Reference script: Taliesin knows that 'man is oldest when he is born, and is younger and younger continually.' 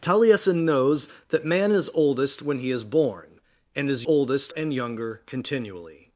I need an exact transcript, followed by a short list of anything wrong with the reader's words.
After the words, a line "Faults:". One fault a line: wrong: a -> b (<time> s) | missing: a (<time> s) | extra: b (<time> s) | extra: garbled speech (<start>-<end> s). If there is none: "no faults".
Taliesin knows that 'man is oldest when he is born, and is oldest and younger continually.'
Faults:
wrong: younger -> oldest (4.0 s)